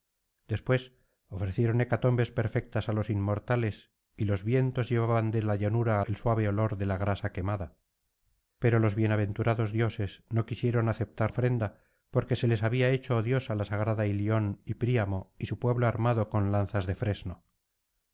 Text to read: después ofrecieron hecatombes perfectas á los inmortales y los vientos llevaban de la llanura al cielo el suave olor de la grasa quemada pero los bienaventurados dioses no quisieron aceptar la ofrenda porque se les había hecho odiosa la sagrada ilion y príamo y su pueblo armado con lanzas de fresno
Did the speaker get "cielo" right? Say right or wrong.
wrong